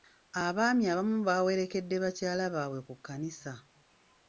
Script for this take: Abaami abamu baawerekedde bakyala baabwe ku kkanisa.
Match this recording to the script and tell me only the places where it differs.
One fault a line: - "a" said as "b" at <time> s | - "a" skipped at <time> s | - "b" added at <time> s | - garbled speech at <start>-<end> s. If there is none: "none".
none